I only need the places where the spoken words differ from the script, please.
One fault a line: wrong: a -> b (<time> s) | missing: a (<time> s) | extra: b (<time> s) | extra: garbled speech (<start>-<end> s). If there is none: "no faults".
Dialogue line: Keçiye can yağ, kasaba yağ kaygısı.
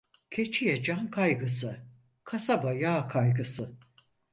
wrong: yağ -> kaygısı (1.1 s)